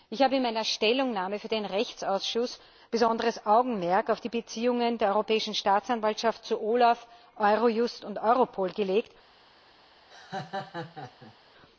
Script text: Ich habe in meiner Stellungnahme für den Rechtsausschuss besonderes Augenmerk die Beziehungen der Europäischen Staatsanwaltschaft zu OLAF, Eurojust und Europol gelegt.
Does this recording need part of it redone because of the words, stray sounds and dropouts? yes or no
yes